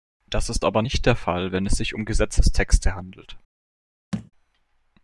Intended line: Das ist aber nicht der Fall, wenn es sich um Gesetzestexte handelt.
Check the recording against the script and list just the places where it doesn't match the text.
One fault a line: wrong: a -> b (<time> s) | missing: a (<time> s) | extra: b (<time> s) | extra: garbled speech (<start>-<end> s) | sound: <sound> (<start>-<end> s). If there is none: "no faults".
sound: thud (4.1-4.3 s)